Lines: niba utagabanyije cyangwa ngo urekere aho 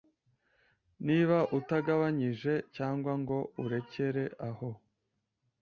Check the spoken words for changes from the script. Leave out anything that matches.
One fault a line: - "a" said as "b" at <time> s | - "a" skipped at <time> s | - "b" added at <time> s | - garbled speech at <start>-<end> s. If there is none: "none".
none